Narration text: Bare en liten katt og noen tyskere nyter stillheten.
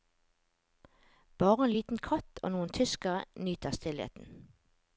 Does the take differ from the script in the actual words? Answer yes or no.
no